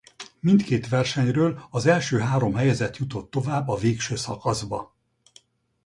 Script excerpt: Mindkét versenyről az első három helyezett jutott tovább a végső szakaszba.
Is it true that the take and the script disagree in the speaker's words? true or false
false